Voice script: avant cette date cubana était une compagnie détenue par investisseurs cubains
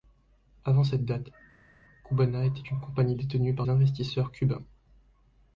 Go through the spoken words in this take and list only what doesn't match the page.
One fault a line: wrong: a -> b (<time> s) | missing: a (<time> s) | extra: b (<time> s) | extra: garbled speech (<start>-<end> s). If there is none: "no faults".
no faults